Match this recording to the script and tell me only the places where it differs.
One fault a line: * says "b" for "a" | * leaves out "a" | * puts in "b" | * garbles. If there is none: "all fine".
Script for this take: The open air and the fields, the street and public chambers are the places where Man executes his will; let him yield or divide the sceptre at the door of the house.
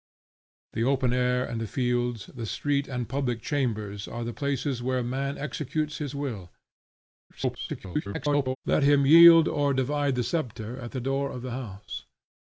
* garbles